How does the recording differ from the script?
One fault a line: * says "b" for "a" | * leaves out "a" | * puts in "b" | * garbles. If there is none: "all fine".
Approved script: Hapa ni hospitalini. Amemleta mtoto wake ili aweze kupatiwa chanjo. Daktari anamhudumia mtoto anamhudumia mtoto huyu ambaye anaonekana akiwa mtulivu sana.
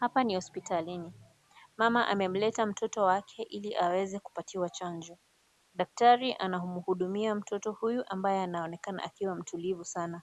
* puts in "Mama"
* leaves out "anamhudumia mtoto"